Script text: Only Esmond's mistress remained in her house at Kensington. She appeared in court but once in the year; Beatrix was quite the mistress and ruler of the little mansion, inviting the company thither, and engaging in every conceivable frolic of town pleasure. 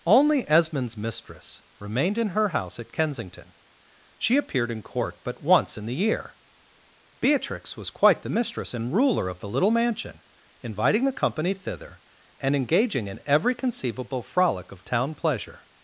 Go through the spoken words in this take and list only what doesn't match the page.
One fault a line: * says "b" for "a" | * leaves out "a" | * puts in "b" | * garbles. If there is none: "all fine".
all fine